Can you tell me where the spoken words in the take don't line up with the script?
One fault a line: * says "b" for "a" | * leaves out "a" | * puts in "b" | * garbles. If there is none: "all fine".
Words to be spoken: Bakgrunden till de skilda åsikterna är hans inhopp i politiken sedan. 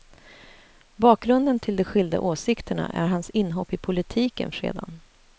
all fine